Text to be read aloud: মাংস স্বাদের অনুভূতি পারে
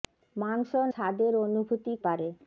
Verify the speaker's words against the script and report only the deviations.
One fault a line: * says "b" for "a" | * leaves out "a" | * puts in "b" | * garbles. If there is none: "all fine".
all fine